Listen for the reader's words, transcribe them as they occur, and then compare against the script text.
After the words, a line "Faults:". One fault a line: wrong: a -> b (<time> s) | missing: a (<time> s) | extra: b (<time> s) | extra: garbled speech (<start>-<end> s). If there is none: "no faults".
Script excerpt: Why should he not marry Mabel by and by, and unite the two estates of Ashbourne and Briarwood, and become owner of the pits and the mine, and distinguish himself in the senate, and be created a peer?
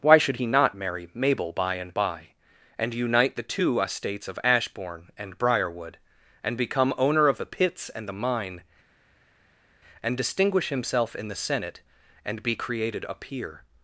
Why should he not marry Mabel by and by, and unite the two estates of Ashbourne and Briarwood, and become owner of the pits and the mine, and distinguish himself in the senate, and be created a peer?
Faults:
no faults